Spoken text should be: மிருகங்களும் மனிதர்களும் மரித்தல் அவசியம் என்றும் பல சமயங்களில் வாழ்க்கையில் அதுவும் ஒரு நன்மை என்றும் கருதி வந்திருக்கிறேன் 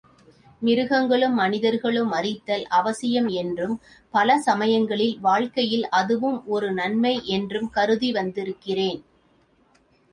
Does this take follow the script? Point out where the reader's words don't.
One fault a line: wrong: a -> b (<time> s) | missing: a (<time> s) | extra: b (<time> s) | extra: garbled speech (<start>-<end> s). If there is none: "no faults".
no faults